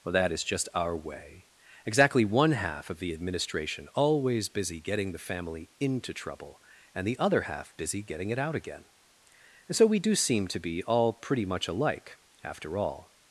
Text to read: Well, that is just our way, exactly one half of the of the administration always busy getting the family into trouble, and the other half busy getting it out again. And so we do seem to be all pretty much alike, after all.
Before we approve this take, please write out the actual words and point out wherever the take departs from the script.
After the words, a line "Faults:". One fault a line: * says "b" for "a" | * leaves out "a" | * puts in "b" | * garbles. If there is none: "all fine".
Well, that is just our way, exactly one half of the administration always busy getting the family into trouble, and the other half busy getting it out again. And so we do seem to be all pretty much alike, after all.
Faults:
* leaves out "of the"